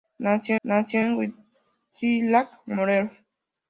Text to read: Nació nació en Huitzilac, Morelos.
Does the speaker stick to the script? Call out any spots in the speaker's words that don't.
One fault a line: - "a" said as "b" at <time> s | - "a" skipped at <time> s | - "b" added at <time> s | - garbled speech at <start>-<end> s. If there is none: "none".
none